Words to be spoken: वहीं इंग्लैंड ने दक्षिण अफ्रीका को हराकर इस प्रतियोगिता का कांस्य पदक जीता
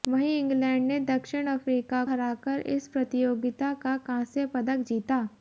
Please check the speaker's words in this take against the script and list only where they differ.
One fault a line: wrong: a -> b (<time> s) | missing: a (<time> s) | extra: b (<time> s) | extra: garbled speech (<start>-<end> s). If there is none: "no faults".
missing: को (2.0 s)